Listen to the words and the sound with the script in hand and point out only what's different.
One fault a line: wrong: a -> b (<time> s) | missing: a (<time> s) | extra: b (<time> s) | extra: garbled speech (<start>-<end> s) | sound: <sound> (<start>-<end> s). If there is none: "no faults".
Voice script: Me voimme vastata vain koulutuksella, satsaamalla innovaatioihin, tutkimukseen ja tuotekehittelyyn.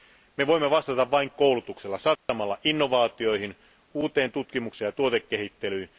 sound: dropout (2.2-2.3 s)
extra: uuteen (3.9 s)